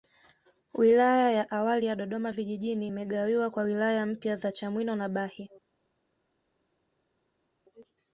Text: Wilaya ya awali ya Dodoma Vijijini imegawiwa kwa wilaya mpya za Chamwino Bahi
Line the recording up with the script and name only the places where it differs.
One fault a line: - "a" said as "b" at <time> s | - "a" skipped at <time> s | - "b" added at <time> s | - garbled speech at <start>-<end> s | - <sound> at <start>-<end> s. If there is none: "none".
- "na" added at 4.9 s